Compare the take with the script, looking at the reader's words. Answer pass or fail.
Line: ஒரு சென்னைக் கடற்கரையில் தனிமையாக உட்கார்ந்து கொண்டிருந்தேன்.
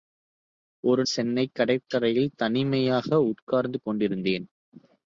pass